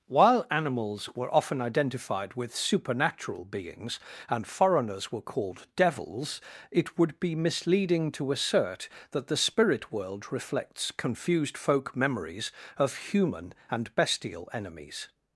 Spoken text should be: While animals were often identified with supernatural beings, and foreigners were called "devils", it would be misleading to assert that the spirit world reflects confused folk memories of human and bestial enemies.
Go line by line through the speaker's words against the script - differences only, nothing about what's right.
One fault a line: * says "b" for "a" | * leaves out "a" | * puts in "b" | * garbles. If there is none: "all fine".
all fine